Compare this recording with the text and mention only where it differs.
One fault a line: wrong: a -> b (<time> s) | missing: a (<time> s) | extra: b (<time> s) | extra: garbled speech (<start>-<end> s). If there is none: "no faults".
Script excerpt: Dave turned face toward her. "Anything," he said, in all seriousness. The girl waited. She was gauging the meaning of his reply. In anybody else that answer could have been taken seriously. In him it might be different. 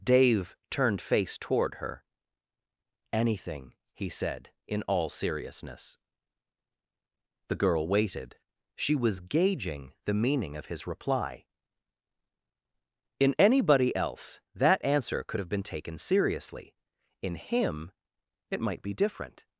no faults